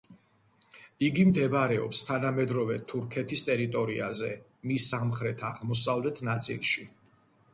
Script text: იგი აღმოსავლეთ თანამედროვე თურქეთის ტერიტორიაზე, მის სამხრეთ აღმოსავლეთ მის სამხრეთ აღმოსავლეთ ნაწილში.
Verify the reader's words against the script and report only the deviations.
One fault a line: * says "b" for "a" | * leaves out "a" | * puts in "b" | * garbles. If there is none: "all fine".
* says "მდებარეობს" for "აღმოსავლეთ"
* leaves out "მის სამხრეთ აღმოსავლეთ"